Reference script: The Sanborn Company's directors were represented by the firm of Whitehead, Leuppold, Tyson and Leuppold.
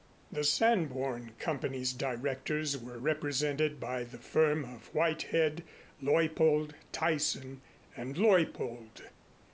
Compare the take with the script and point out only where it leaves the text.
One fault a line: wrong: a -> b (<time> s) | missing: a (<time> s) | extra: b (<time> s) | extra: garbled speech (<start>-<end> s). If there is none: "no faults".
no faults